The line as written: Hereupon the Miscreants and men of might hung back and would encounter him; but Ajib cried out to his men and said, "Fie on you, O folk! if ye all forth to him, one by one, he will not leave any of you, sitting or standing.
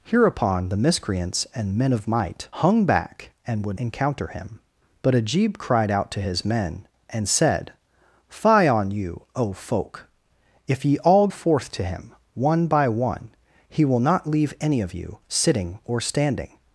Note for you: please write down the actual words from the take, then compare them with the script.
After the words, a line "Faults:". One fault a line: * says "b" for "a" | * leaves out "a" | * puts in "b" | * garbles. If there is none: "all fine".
Hereupon the Miscreants and men of might hung back and would encounter him; but Ajib cried out to his men and said, "Fie on you, O folk! if ye all forth to him, one by one, he will not leave any of you, sitting or standing.
Faults:
all fine